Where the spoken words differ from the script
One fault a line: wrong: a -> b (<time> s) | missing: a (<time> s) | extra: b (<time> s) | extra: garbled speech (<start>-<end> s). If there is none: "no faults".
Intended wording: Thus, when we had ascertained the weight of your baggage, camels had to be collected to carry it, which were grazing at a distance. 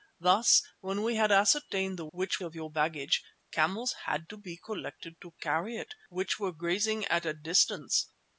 wrong: weight -> which (2.1 s)